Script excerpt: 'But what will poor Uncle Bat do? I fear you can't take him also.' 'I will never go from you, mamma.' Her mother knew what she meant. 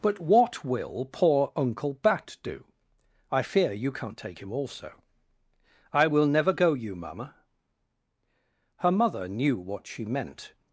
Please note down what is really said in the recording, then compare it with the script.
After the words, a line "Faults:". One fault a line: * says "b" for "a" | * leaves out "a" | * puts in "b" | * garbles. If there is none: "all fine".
'But what will poor Uncle Bat do? I fear you can't take him also.' 'I will never go you, mamma.' Her mother knew what she meant.
Faults:
* leaves out "from"